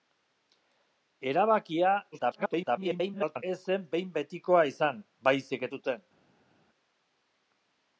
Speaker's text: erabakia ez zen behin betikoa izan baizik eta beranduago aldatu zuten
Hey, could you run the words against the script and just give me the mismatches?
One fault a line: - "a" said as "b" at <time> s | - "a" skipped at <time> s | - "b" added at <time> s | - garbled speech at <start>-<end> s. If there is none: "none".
- garbled speech at 2.1-3.4 s
- "eta beranduago aldatu" skipped at 5.7 s